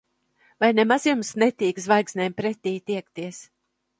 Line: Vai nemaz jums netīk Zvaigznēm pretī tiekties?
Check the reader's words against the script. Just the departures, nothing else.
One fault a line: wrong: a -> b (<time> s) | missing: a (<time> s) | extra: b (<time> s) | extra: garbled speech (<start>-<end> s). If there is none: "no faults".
no faults